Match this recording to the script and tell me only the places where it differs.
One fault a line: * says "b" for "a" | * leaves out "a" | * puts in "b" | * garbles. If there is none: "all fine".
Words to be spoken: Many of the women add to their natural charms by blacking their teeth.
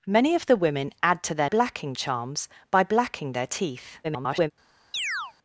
* says "blacking" for "natural"
* garbles